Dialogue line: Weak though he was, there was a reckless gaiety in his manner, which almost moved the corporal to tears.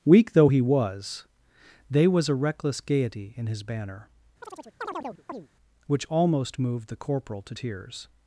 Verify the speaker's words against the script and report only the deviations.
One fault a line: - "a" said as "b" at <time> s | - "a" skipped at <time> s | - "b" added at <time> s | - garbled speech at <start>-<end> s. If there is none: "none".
- "there" said as "they" at 1.9 s
- "manner" said as "banner" at 3.6 s